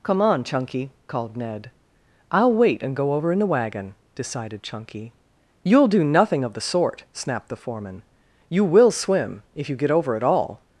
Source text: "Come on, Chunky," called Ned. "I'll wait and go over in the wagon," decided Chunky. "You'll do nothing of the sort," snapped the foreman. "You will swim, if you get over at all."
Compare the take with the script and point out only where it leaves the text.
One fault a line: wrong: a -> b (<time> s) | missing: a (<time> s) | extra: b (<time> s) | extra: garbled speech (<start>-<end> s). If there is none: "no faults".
no faults